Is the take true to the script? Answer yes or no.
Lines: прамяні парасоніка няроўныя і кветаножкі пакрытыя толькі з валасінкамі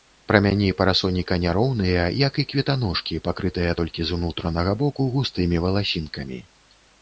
no